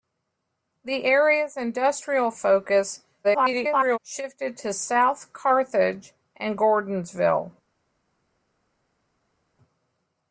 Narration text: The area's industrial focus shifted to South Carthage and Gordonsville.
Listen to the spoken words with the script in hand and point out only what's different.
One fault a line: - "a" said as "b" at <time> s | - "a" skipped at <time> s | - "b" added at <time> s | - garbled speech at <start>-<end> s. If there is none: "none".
- garbled speech at 3.2-4.0 s